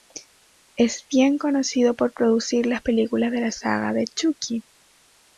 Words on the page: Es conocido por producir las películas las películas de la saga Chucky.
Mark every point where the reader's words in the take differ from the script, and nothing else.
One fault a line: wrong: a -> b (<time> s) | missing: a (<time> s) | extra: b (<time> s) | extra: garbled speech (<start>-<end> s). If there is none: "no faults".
extra: bien (1.1 s)
missing: las películas (3.3 s)
extra: de (3.9 s)